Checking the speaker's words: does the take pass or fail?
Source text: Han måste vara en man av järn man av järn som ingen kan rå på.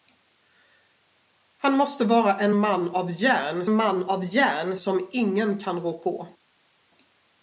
pass